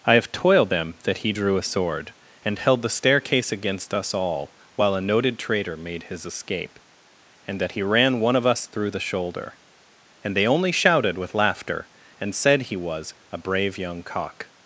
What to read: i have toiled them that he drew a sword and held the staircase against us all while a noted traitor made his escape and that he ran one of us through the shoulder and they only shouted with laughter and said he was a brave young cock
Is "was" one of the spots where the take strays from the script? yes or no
no